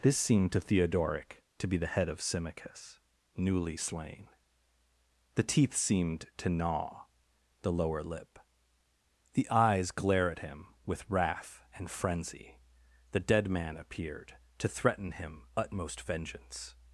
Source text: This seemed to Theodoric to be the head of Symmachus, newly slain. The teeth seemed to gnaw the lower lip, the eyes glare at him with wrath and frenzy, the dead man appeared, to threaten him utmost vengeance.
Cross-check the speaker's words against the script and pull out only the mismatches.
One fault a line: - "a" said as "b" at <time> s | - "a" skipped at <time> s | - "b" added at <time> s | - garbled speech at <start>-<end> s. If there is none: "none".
none